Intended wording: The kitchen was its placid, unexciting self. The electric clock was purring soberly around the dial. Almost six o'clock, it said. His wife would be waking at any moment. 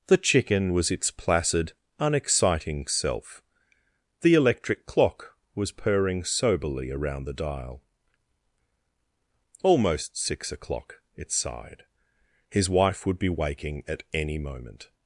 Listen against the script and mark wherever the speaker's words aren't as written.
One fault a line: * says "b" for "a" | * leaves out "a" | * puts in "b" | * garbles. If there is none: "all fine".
* says "chicken" for "kitchen"
* says "sighed" for "said"